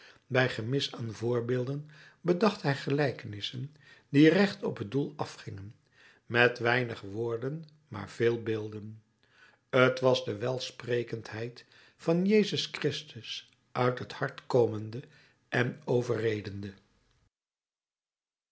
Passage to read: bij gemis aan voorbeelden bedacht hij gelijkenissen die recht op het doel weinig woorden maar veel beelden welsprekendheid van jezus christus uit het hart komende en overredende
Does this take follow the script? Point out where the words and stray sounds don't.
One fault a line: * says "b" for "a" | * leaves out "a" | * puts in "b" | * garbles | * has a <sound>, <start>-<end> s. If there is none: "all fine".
* puts in "afgingen met"
* puts in "t was de"